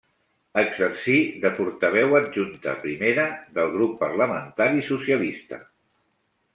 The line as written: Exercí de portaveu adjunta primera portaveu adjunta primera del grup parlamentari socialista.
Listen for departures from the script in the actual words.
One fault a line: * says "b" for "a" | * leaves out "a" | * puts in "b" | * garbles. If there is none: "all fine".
* leaves out "portaveu adjunta primera"